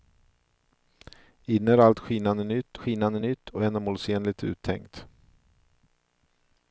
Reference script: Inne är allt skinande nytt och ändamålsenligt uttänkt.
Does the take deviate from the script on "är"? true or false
false